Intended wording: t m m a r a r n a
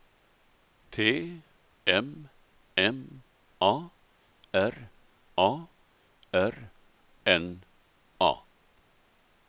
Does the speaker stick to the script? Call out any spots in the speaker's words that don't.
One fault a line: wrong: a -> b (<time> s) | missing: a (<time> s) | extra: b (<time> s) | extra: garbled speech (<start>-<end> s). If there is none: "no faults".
no faults